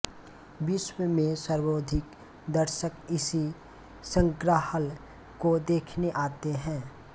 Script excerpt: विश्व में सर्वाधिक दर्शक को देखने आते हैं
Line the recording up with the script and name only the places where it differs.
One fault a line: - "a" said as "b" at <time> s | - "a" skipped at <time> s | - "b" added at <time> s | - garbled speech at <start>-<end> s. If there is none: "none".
- "इसी संग्रहालय" added at 3.1 s